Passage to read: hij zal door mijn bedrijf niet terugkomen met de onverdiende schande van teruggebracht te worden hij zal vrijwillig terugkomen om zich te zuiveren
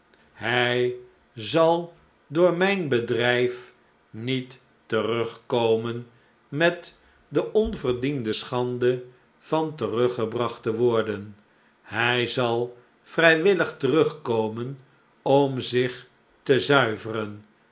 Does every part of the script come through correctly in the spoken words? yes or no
yes